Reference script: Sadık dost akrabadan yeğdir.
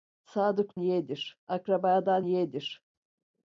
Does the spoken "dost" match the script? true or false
false